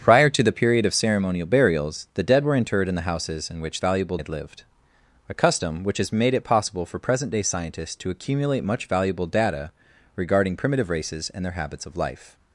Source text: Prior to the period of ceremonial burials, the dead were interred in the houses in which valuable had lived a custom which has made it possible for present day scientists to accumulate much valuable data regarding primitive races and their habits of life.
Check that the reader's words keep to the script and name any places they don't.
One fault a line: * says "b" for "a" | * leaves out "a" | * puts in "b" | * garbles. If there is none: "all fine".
all fine